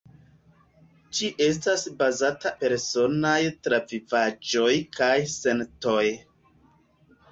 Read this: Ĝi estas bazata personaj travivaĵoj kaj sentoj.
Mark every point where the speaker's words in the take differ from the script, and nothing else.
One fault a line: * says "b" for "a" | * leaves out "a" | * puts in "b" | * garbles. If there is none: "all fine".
all fine